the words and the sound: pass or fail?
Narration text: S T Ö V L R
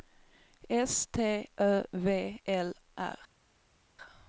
pass